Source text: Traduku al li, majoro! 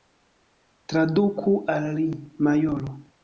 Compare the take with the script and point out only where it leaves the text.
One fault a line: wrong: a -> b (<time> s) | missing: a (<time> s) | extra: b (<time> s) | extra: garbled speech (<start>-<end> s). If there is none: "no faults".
no faults